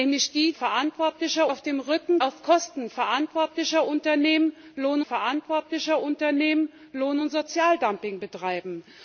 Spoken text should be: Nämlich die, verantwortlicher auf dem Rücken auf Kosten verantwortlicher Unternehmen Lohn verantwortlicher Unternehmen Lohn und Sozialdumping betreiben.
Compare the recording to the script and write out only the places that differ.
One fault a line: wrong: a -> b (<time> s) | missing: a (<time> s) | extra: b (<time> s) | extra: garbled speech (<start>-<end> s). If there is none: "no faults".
no faults